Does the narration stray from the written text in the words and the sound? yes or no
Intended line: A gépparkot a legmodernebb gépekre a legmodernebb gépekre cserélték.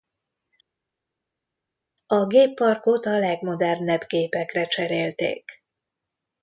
yes